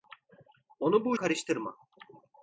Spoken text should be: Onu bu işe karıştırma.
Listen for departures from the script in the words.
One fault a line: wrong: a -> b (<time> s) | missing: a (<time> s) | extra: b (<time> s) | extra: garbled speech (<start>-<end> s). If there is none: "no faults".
missing: işe (1.1 s)